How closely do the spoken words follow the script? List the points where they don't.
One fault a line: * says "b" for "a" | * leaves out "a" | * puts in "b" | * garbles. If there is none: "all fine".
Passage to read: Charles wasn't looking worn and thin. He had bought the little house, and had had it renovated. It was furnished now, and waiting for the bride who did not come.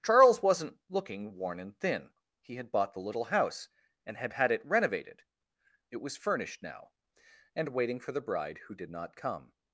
all fine